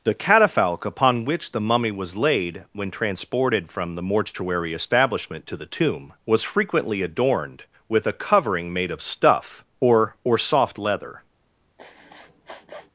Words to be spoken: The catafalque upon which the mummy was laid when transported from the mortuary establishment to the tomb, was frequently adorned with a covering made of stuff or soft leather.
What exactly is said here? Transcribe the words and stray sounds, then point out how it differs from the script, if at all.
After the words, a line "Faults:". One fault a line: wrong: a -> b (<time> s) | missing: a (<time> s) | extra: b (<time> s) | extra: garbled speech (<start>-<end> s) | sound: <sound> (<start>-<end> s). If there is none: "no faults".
The catafalque upon which the mummy was laid when transported from the mortuary establishment to the tomb, was frequently adorned with a covering made of stuff or or soft leather.
Faults:
extra: or (10.2 s)
sound: sniff (11.8-12.9 s)